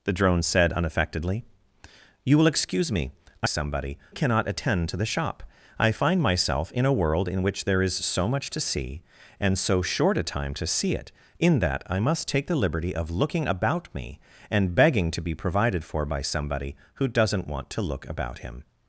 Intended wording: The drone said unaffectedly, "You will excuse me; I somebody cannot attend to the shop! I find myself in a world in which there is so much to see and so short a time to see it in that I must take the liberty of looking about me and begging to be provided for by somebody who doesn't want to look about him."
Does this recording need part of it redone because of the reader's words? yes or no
no